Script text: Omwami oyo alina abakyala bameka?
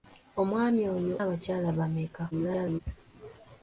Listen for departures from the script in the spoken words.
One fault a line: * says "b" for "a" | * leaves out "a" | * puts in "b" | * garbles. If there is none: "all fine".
* leaves out "alina"
* garbles